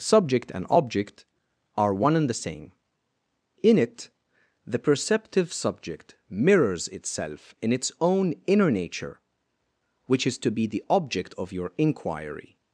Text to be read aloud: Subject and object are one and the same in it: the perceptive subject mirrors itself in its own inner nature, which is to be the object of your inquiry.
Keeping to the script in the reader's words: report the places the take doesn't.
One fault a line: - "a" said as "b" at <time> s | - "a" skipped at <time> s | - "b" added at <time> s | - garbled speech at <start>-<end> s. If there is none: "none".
none